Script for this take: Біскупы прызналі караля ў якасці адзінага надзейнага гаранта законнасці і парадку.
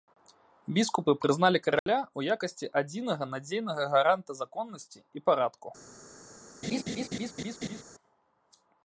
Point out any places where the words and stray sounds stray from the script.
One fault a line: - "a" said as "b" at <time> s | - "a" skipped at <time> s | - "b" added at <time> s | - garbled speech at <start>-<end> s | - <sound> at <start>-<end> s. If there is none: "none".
- dropout at 1.8-1.9 s
- laugh at 6.6-7.8 s